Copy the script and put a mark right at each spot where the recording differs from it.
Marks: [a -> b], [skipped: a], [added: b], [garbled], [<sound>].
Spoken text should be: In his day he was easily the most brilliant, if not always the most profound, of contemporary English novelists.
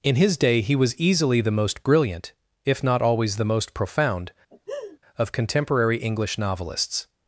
In his day he was easily the most brilliant, if not always the most profound, [laugh] of contemporary English novelists.